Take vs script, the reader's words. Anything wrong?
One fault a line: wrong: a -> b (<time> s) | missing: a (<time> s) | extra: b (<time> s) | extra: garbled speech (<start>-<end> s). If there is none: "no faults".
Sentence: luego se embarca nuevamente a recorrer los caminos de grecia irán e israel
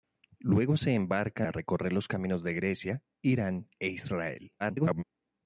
missing: nuevamente (1.4 s)
extra: garbled speech (4.6-5.0 s)